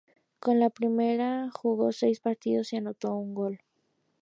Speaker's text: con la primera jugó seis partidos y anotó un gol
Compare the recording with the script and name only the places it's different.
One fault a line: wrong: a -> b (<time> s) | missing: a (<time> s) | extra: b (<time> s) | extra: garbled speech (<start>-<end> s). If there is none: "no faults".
no faults